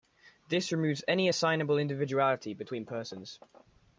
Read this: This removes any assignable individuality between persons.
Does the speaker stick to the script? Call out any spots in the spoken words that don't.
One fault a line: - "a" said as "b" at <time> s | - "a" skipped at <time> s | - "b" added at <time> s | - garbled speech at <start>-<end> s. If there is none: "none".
none